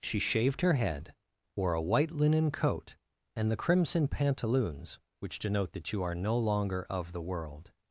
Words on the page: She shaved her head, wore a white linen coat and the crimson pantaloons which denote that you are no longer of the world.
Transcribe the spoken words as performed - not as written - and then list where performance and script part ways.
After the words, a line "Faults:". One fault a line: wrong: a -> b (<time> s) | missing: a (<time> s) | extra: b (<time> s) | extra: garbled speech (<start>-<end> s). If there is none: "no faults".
She shaved her head, wore a white linen coat and the crimson pantaloons which denote that you are no longer of the world.
Faults:
no faults